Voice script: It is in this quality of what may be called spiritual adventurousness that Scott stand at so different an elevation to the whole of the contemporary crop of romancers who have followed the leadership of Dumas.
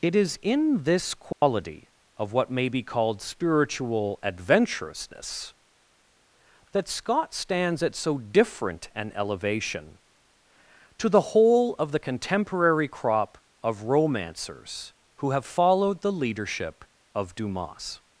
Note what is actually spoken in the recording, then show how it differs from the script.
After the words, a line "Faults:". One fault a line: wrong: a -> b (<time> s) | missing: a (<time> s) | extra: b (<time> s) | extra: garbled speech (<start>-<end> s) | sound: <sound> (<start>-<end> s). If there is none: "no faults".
It is in this quality of what may be called spiritual adventurousness that Scott stands at so different an elevation to the whole of the contemporary crop of romancers who have followed the leadership of Dumas.
Faults:
sound: dropout (1.3-1.4 s)
wrong: stand -> stands (7.3 s)